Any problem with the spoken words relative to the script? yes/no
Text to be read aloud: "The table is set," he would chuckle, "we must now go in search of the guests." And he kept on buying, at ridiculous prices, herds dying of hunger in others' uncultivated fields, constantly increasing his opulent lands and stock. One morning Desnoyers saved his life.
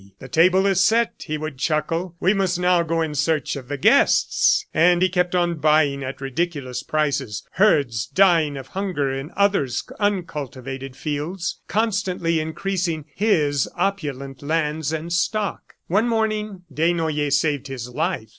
no